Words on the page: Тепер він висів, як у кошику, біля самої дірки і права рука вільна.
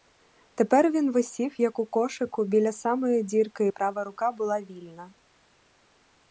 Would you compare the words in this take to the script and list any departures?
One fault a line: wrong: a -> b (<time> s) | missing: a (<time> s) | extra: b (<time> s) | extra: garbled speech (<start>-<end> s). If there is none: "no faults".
extra: була (4.3 s)